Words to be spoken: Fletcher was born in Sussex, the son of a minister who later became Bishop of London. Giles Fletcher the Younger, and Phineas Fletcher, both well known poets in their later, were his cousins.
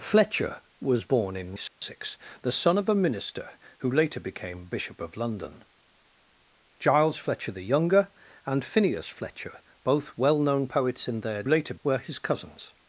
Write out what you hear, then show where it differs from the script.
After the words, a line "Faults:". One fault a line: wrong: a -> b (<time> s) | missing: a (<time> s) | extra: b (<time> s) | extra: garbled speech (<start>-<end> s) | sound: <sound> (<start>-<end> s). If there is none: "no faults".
Fletcher was born in Sussex, the son of a minister who later became Bishop of London. Giles Fletcher the Younger, and Phineas Fletcher, both well known poets in their later, were his cousins.
Faults:
sound: dropout (1.7-1.8 s)